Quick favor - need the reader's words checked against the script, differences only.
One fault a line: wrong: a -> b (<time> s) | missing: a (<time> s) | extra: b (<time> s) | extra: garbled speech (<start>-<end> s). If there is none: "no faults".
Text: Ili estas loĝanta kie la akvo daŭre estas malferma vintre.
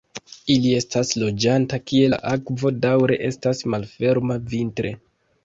no faults